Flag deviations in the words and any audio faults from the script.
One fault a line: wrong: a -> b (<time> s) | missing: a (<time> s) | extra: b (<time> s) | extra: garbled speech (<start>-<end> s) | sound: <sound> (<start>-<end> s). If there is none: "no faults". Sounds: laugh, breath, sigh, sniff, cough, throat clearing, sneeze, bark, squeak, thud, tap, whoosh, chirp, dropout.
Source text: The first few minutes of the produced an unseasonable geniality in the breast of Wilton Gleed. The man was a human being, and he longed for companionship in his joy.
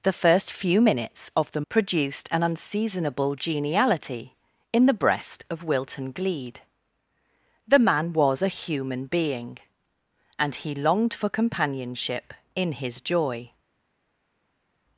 no faults